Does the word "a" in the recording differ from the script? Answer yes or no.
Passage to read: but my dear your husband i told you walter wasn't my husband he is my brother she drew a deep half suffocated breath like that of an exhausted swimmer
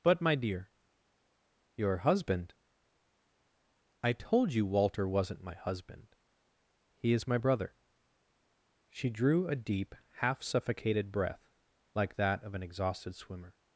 no